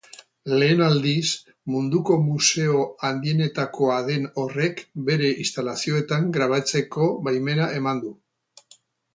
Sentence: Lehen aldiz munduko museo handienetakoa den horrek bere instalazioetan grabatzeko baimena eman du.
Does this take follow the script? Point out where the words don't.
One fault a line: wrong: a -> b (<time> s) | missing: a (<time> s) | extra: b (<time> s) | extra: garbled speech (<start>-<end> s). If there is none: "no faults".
no faults